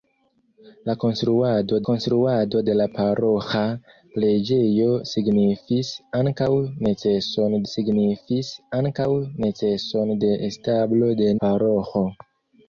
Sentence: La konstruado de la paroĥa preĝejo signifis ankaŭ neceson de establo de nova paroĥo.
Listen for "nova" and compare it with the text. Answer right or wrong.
wrong